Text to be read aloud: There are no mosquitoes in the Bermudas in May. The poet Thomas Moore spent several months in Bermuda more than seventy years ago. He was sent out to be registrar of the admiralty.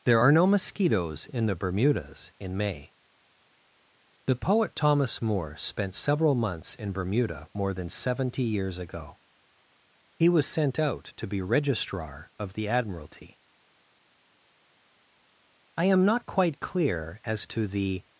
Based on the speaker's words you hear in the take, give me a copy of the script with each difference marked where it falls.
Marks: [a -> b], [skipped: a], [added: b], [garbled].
There are no mosquitoes in the Bermudas in May. The poet Thomas Moore spent several months in Bermuda more than seventy years ago. He was sent out to be registrar of the admiralty. [added: I am not quite clear as to the]